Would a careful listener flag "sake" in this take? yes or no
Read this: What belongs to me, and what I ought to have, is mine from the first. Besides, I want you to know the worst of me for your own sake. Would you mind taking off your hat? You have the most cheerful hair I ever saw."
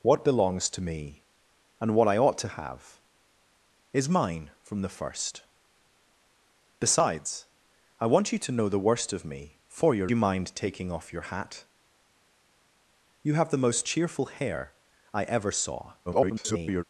yes